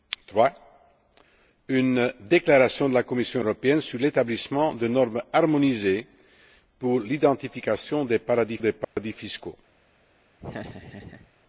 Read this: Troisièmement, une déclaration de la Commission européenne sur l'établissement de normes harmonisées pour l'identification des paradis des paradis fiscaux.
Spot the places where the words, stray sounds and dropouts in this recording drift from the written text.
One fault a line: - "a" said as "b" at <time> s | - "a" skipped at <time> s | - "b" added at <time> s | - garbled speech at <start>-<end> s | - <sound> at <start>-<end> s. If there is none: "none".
- dropout at 8.8-9.0 s
- laugh at 10.4-11.3 s